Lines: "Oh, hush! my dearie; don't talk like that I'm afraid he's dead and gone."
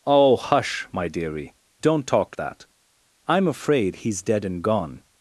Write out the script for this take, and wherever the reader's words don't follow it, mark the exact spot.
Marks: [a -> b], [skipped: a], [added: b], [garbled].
"Oh, hush! my dearie; don't talk [skipped: like] that I'm afraid he's dead and gone."